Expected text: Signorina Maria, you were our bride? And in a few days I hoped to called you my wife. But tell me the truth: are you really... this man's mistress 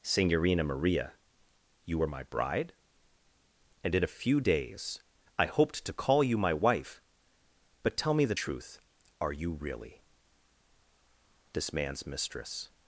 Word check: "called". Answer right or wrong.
wrong